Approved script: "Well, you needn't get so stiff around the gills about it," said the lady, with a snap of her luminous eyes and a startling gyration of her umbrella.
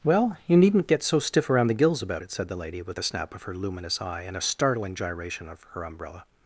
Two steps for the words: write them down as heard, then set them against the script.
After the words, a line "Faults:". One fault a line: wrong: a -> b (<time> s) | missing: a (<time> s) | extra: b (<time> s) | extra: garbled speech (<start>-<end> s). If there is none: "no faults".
"Well, you needn't get so stiff around the gills about it," said the lady, with a snap of her luminous eye and a startling gyration of her umbrella.
Faults:
wrong: eyes -> eye (4.0 s)